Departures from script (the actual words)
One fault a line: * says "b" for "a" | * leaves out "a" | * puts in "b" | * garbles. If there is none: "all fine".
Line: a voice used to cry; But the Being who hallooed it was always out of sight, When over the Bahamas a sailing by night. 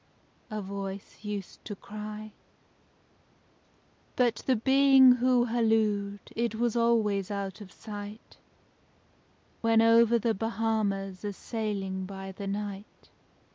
* puts in "the"